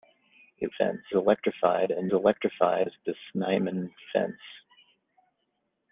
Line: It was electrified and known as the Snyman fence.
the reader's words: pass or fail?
fail